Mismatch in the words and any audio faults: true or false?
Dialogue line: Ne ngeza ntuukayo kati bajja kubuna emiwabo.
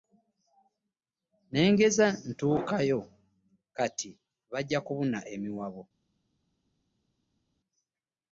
false